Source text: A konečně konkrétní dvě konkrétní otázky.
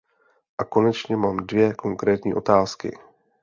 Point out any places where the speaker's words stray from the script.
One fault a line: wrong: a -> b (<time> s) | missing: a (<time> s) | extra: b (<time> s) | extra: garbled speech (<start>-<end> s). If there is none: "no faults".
wrong: konkrétní -> mám (1.2 s)